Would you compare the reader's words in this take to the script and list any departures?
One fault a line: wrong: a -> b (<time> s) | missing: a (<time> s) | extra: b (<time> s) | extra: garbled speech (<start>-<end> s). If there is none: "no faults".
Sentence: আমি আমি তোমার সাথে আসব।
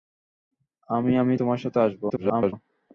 extra: garbled speech (2.1-2.5 s)